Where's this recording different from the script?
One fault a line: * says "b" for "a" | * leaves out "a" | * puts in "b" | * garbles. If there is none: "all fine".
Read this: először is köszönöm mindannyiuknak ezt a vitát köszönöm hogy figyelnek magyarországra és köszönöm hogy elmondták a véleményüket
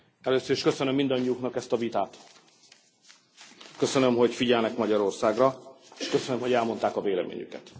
all fine